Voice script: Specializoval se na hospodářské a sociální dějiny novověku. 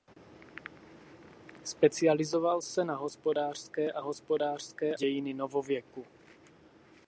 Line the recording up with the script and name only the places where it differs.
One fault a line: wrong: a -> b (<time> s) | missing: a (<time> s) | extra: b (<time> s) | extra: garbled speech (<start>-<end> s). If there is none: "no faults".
wrong: sociální -> hospodářské (4.0 s)